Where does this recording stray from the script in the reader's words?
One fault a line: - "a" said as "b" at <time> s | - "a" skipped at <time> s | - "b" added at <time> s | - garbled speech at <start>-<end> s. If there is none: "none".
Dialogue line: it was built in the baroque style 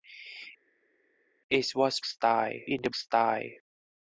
- "built" said as "style" at 2.0 s
- "baroque" skipped at 2.9 s